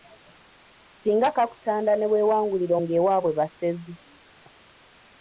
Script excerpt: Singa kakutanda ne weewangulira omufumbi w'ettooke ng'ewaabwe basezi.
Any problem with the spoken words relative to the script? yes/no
yes